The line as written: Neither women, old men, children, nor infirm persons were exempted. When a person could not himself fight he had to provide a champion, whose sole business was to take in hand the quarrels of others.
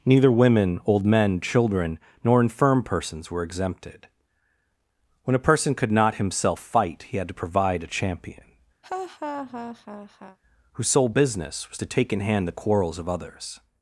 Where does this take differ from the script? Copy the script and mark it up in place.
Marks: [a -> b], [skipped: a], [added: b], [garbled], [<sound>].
Neither women, old men, children, nor infirm persons were exempted. When a person could not himself fight he had to provide a champion, [laugh] whose sole business was to take in hand the quarrels of others.